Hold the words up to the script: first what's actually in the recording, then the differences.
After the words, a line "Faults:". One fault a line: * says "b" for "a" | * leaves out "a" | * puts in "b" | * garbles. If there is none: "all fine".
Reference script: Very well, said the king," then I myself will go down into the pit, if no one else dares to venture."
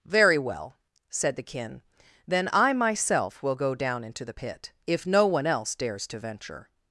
Very well, said the kin," then I myself will go down into the pit, if no one else dares to venture."
Faults:
* says "kin" for "king"